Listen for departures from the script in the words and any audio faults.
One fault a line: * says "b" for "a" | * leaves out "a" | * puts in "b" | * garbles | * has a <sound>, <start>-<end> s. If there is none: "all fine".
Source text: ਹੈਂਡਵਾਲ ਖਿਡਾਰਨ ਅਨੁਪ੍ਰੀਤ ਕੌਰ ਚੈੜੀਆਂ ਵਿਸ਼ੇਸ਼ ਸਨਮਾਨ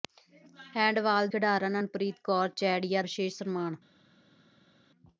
all fine